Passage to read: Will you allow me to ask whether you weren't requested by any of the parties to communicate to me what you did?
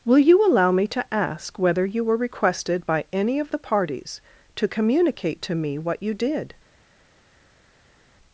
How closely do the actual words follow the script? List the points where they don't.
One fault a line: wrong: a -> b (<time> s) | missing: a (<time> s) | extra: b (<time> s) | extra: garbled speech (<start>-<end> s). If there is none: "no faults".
wrong: weren't -> were (2.0 s)